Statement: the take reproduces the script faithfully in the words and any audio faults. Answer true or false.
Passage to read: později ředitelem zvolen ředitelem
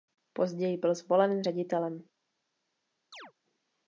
false